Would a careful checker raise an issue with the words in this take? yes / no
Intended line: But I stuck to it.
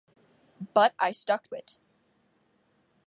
yes